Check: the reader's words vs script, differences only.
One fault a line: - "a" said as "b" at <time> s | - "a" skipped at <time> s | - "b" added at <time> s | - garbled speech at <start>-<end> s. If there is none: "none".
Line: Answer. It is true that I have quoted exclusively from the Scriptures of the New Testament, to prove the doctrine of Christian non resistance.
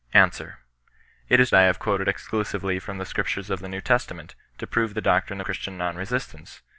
- "true that" skipped at 1.5 s
- "of" skipped at 5.4 s